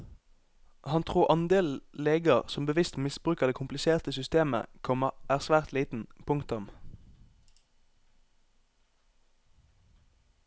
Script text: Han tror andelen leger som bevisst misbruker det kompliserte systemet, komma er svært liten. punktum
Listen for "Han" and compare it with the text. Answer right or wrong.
right